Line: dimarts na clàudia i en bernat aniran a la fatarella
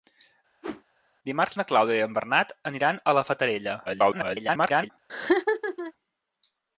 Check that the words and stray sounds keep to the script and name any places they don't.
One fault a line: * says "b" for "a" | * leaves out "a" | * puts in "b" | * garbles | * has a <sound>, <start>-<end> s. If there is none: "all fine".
* has a whoosh, 0.6-0.8 s
* garbles
* has a laugh, 5.1-5.9 s